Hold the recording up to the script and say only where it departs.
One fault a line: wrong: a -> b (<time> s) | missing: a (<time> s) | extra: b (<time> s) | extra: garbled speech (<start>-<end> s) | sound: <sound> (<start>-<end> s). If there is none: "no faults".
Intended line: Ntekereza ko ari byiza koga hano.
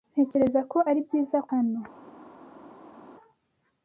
missing: koga (1.4 s)